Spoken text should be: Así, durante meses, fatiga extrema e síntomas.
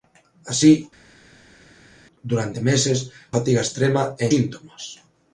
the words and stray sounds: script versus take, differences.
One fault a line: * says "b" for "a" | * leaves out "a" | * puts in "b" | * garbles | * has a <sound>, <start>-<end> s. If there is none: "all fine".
all fine